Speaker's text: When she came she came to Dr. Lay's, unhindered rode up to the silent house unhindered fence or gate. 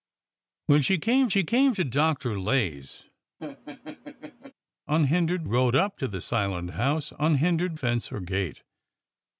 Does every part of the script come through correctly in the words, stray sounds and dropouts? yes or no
no